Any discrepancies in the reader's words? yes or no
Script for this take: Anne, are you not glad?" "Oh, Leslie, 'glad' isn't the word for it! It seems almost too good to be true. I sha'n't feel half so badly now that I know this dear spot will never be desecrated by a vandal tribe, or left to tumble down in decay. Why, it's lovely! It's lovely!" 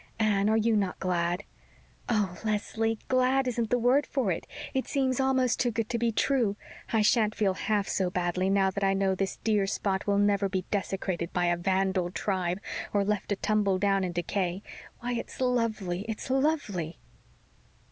no